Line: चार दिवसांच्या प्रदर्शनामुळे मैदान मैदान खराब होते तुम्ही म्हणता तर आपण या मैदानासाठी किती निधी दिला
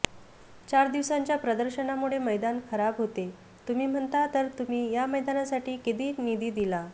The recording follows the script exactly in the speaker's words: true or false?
false